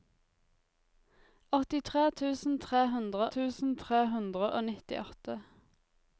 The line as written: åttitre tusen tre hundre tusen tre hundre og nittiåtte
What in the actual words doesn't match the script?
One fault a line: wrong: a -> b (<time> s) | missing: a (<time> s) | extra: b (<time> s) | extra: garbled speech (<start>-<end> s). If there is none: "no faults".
no faults